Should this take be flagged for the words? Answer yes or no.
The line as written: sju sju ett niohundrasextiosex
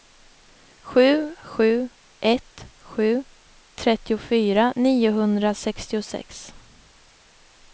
yes